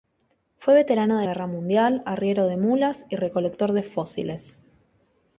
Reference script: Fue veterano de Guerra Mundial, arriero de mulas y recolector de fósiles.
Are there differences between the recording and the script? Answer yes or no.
no